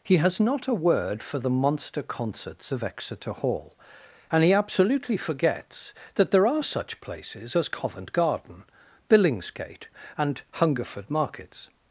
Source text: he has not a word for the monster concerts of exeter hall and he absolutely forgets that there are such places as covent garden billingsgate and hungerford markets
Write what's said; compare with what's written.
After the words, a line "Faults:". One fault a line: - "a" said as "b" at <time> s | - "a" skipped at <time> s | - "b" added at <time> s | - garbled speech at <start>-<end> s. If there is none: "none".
he has not a word for the monster concerts of exeter hall and he absolutely forgets that there are such places as covent garden billingsgate and hungerford markets
Faults:
none